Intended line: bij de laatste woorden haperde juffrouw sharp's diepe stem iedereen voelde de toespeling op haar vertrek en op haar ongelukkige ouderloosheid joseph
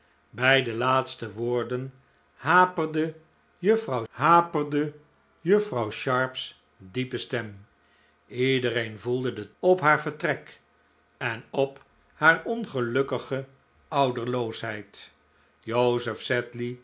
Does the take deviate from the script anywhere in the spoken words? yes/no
yes